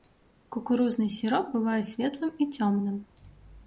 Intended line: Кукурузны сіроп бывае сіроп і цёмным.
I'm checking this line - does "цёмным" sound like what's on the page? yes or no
yes